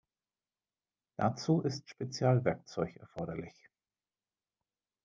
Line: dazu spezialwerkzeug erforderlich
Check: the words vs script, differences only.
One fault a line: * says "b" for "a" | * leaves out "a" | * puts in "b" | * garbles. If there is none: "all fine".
* puts in "ist"